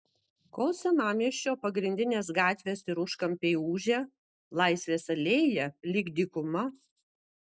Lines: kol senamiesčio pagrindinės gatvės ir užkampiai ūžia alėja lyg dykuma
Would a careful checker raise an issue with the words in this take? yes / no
yes